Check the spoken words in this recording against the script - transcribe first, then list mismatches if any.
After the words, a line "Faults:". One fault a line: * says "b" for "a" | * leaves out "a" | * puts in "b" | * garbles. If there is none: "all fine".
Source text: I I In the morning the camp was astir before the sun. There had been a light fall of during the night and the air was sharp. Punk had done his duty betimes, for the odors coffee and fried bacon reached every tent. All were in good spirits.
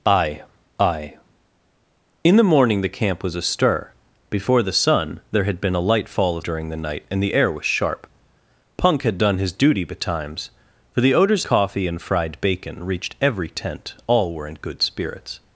I I In the morning the camp was astir before the sun. There had been a light fall of during the night and the air was sharp. Punk had done his duty betimes, for the odors coffee and fried bacon reached every tent. All were in good spirits.
Faults:
all fine